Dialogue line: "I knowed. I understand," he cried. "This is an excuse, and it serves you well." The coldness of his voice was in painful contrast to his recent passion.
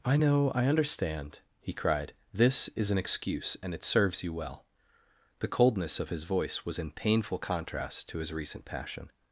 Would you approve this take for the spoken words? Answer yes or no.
no